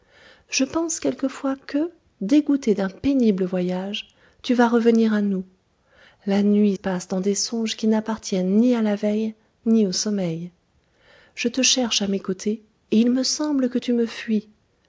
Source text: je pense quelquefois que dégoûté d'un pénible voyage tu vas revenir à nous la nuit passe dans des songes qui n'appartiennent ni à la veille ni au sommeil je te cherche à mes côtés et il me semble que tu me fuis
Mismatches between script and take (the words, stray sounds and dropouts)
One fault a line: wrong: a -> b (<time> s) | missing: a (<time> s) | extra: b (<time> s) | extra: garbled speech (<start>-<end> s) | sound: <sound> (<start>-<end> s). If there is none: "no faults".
no faults